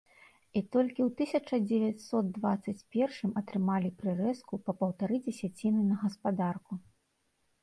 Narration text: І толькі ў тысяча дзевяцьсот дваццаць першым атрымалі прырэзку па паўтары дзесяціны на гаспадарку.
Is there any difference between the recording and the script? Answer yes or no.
no